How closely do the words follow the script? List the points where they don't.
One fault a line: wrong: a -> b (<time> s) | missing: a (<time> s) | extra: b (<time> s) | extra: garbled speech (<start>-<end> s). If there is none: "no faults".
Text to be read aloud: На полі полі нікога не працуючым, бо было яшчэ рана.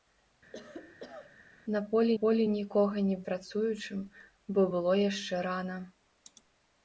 no faults